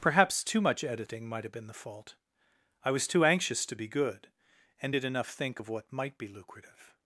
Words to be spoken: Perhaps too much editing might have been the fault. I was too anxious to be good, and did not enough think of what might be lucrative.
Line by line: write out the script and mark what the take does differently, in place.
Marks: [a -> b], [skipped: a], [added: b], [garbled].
Perhaps too much editing might have been the fault. I was too anxious to be good, and did [skipped: not] enough think of what might be lucrative.